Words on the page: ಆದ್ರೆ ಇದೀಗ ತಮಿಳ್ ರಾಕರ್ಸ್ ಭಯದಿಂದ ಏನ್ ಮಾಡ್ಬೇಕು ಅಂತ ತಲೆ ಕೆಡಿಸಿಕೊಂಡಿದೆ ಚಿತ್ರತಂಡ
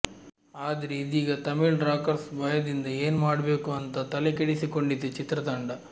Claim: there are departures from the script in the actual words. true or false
false